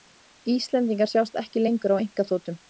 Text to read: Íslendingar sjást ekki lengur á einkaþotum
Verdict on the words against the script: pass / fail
pass